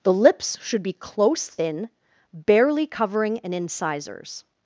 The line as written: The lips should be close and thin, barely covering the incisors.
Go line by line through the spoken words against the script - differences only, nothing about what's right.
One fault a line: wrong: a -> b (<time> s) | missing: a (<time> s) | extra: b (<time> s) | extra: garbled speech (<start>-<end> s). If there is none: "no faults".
missing: and (1.5 s)
wrong: the -> an (3.4 s)